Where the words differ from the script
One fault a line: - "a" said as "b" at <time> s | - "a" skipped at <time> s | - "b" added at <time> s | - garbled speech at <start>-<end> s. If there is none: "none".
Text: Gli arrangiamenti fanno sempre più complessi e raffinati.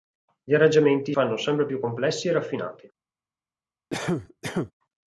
none